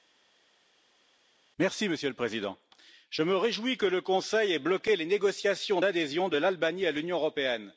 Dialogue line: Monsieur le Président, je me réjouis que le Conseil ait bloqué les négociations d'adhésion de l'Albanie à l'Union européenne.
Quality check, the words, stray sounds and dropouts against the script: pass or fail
pass